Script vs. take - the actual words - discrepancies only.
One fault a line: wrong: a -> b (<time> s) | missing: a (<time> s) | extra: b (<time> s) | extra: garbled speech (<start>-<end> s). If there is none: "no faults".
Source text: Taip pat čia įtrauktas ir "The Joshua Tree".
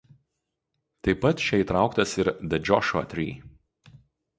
no faults